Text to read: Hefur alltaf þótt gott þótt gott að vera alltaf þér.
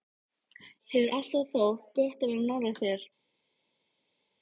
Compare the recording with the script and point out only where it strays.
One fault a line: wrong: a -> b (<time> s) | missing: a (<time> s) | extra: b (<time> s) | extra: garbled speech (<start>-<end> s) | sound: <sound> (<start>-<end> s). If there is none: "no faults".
missing: þótt gott (2.2 s)
wrong: alltaf -> nálægt (2.5 s)